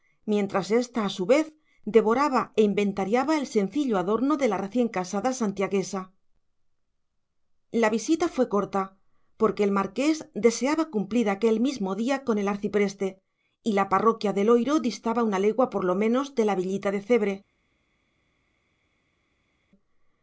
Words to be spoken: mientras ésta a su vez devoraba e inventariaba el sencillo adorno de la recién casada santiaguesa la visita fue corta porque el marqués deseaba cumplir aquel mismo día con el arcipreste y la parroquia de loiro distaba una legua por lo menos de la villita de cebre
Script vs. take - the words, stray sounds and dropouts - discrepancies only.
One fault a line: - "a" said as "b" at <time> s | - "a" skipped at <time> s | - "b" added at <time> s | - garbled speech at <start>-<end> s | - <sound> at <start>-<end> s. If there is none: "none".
none